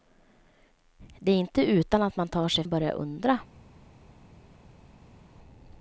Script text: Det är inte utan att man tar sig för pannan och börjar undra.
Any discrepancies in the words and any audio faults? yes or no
yes